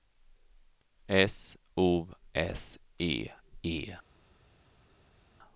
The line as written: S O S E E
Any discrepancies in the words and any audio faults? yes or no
no